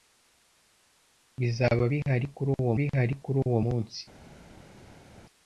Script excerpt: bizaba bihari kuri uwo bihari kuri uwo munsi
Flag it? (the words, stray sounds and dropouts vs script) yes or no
no